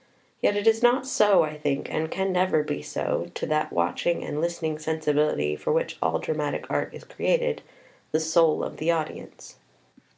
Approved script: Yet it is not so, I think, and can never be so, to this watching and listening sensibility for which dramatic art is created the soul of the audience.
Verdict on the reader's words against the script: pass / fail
fail